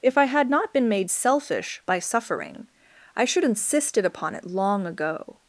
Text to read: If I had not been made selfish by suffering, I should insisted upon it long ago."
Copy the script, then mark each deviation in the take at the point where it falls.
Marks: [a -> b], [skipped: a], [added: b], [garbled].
If I had not been made selfish by suffering, I should insisted upon it long ago."